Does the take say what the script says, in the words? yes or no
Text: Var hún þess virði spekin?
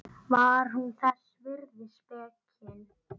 yes